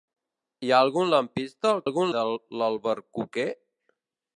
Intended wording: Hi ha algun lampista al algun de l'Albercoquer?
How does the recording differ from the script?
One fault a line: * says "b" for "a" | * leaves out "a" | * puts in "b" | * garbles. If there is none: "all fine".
all fine